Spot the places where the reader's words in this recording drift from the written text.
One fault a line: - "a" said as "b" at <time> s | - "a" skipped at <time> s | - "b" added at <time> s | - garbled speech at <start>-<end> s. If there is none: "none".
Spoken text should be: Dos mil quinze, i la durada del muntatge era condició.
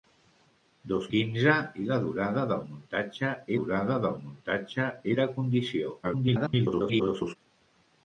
- "mil" skipped at 1.1 s
- "durada del muntatge" added at 3.6 s
- garbled speech at 6.0-7.4 s